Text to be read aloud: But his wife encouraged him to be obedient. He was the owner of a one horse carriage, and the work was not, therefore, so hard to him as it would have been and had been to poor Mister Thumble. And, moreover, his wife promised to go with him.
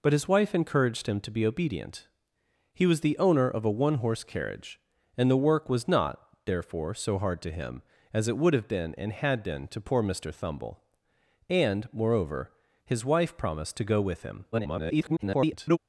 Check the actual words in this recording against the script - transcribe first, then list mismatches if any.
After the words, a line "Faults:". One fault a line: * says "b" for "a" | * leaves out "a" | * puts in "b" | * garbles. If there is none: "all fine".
But his wife encouraged him to be obedient. He was the owner of a one horse carriage, and the work was not, therefore, so hard to him as it would have been and had been to poor Mister Thumble. And, moreover, his wife promised to go with him. [garbled]
Faults:
* garbles